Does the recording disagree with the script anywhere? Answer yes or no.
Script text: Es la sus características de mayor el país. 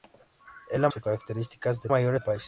no